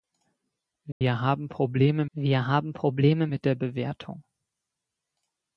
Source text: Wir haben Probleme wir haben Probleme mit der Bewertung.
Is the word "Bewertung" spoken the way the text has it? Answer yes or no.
yes